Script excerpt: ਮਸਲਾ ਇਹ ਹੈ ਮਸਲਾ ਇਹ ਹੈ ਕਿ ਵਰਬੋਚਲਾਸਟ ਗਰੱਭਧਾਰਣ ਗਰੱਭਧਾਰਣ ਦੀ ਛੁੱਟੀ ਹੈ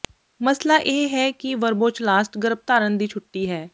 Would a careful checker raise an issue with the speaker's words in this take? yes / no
yes